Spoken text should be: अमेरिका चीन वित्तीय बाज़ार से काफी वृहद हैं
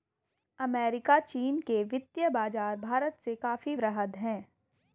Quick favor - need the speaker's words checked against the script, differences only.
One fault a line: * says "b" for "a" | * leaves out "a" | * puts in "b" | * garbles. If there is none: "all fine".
* puts in "के"
* puts in "भारत"